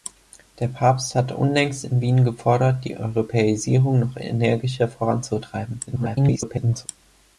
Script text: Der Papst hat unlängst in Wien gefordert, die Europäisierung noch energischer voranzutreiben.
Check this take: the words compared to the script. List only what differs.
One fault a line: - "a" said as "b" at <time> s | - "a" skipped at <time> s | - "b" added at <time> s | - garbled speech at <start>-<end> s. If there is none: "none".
- garbled speech at 5.9-6.9 s